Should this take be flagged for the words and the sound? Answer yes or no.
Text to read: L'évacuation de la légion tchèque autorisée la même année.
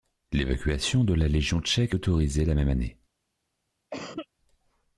yes